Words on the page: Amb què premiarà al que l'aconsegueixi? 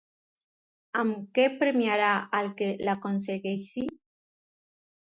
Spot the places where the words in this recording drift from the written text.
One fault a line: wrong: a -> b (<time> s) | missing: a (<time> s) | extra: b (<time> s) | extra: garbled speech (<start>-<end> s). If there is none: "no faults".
no faults